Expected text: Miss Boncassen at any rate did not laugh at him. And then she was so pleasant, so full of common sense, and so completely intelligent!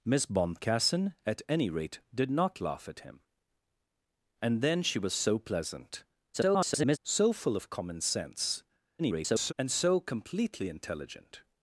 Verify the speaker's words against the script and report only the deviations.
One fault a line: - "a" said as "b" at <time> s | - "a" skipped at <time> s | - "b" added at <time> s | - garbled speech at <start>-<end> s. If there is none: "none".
- garbled speech at 6.3-7.0 s
- garbled speech at 9.0-9.5 s